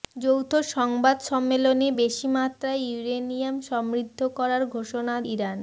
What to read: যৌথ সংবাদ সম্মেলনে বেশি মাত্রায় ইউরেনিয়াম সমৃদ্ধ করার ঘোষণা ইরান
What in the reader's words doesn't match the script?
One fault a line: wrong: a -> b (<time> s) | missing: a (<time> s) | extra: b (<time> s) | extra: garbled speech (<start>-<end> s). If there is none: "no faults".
no faults